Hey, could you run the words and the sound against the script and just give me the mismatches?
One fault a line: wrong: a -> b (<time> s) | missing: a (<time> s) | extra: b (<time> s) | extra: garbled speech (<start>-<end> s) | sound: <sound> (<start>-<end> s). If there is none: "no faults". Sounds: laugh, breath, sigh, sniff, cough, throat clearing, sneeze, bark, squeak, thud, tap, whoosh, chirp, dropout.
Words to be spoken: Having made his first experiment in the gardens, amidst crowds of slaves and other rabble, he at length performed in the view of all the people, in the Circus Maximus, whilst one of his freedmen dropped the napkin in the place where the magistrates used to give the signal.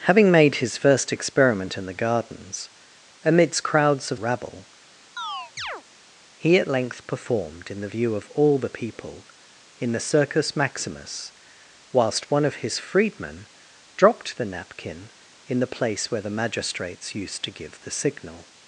missing: slaves and other (4.2 s)
sound: chirp (5.2-5.8 s)